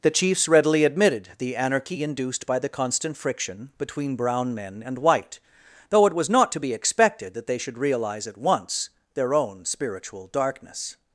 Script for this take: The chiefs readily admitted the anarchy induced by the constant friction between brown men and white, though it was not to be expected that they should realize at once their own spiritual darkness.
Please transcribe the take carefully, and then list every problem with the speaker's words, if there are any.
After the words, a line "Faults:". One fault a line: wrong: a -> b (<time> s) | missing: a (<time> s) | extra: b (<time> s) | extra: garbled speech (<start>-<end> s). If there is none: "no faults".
The chiefs readily admitted the anarchy induced by the constant friction between brown men and white, though it was not to be expected that they should realize at once their own spiritual darkness.
Faults:
no faults